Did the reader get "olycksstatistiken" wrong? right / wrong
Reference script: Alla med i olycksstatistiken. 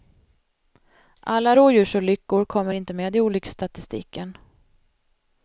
right